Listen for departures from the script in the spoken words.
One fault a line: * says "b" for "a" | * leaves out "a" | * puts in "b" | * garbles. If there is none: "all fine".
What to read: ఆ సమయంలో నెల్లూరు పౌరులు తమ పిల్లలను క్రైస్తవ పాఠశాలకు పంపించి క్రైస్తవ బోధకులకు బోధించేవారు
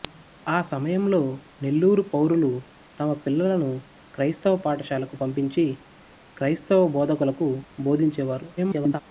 * garbles